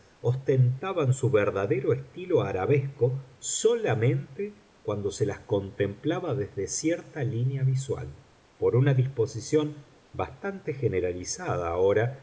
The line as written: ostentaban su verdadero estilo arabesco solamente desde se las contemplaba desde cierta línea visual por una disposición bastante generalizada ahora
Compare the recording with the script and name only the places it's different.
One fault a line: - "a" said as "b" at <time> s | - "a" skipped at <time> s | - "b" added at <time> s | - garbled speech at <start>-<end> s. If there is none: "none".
- "desde" said as "cuando" at 4.8 s